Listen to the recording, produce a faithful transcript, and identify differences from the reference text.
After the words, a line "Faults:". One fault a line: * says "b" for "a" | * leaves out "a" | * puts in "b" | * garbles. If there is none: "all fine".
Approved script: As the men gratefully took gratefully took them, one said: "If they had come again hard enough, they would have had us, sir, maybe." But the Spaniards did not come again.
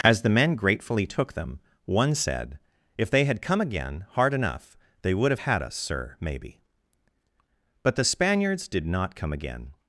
As the men gratefully took them, one said: "If they had come again hard enough, they would have had us, sir, maybe." But the Spaniards did not come again.
Faults:
* leaves out "gratefully took"